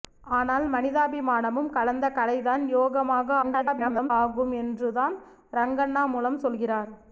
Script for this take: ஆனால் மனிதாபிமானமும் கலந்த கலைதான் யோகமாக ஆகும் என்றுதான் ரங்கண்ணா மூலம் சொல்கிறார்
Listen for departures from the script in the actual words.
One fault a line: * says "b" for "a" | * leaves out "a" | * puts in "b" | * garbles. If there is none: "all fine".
* garbles